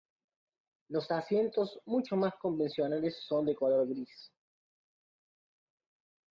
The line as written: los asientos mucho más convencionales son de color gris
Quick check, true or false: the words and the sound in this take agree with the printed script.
true